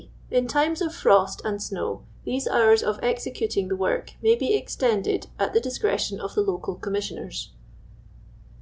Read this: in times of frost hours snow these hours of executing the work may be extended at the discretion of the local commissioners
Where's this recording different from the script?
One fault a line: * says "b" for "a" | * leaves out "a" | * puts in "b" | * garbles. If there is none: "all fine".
* says "and" for "hours"